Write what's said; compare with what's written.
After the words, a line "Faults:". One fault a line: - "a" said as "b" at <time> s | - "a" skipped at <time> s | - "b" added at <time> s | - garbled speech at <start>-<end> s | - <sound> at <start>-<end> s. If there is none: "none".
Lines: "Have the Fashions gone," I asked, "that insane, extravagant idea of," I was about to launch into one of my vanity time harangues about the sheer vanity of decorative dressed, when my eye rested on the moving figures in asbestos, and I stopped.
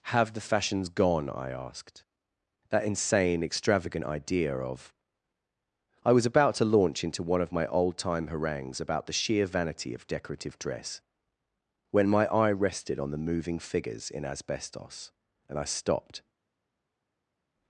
"Have the Fashions gone," I asked, "that insane, extravagant idea of," I was about to launch into one of my old time harangues about the sheer vanity of decorative dress, when my eye rested on the moving figures in asbestos, and I stopped.
Faults:
- "vanity" said as "old" at 7.7 s
- "dressed" said as "dress" at 10.6 s